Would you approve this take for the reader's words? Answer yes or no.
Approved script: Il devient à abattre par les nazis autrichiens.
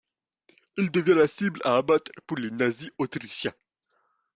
no